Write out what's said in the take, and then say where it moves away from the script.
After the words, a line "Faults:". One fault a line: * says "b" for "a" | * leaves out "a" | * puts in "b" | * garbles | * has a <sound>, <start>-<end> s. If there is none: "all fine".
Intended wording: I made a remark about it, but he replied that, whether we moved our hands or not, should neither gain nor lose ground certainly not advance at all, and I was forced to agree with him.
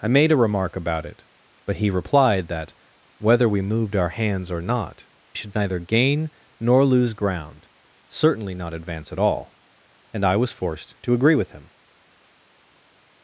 I made a remark about it, but he replied that, whether we moved our hands or not, should neither gain nor lose ground certainly not advance at all, and I was forced to agree with him.
Faults:
all fine